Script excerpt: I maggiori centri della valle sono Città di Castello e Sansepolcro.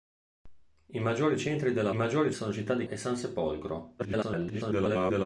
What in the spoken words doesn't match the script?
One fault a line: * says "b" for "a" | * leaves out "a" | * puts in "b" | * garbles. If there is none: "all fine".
* says "maggiori" for "valle"
* leaves out "Castello"
* garbles